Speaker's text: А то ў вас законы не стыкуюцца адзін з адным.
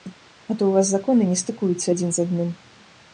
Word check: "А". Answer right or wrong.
right